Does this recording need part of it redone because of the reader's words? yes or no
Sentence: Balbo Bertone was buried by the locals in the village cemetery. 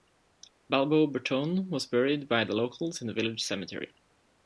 no